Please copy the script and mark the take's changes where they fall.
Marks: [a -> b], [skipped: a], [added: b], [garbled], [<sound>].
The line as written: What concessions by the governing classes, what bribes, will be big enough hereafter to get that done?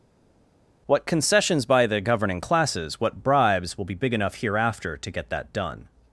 What concessions by the governing classes, what bribes, will be big enough hereafter to get that done?